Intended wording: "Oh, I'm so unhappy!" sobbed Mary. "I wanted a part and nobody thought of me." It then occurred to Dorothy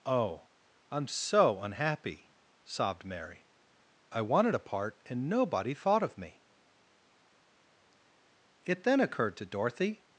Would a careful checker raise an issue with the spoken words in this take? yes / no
no